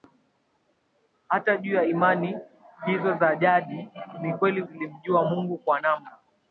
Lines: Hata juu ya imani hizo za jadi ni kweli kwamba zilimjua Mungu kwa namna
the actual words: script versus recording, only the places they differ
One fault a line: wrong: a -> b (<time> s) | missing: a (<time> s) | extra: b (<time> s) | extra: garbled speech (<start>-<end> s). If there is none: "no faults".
missing: kwamba (4.6 s)